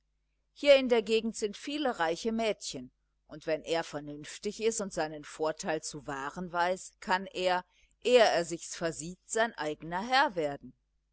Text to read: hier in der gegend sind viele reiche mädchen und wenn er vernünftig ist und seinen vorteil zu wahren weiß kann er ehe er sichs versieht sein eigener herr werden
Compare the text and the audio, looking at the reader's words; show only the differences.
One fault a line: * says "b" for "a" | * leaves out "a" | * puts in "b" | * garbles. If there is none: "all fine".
all fine